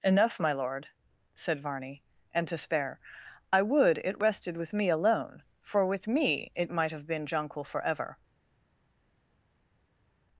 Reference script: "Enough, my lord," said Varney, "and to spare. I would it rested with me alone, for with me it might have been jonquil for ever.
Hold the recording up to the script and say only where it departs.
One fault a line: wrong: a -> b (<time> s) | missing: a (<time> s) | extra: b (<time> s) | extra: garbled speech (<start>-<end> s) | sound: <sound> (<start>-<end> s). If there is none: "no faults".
no faults